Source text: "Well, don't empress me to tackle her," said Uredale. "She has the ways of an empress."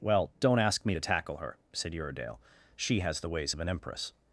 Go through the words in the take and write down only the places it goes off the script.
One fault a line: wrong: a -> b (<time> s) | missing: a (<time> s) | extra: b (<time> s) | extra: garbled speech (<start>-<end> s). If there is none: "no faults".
wrong: empress -> ask (0.6 s)